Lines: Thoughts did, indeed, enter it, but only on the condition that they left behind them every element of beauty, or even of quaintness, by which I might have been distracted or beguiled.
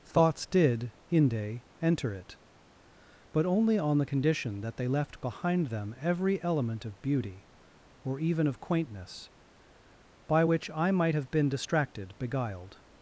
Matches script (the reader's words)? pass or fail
fail